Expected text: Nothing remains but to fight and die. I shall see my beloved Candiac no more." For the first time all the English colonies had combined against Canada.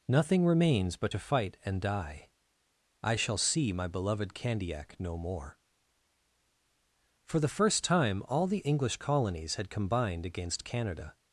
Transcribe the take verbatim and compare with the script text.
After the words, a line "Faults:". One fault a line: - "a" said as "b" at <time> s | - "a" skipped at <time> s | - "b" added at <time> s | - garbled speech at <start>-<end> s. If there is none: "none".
Nothing remains but to fight and die. I shall see my beloved Candiac no more." For the first time all the English colonies had combined against Canada.
Faults:
none